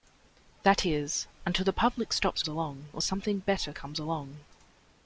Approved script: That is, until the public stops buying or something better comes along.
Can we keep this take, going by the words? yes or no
no